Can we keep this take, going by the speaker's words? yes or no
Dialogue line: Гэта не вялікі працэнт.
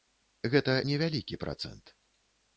yes